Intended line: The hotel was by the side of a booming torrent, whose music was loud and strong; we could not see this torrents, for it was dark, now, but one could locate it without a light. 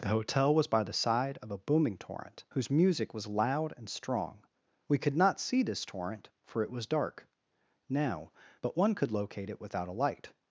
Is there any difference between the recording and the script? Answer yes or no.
yes